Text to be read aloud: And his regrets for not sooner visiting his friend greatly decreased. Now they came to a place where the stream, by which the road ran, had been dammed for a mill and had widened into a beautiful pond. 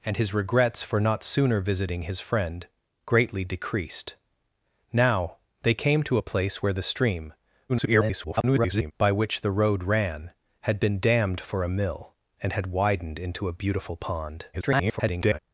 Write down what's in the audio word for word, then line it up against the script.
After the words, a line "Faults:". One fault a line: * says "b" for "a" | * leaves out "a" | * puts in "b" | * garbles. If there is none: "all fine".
And his regrets for not sooner visiting his friend greatly decreased. Now they came to a place where the stream, [garbled] by which the road ran, had been dammed for a mill and had widened into a beautiful pond. [garbled]
Faults:
* garbles
* garbles